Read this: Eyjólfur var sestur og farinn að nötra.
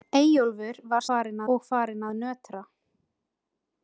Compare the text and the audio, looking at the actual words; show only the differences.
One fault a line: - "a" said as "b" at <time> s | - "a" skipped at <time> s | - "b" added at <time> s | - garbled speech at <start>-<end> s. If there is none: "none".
- "sestur" said as "farinn" at 1.1 s